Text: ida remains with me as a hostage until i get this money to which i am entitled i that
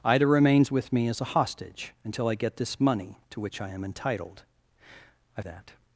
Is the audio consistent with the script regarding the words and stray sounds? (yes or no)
yes